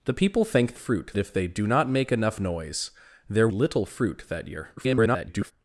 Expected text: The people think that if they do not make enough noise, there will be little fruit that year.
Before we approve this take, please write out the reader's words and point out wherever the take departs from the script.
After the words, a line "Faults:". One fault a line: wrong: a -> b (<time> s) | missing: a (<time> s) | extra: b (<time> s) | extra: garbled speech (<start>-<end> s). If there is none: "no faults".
The people think fruit if they do not make enough noise, there little fruit that year. [garbled]
Faults:
wrong: that -> fruit (0.7 s)
missing: will be (3.5 s)
extra: garbled speech (4.8-5.5 s)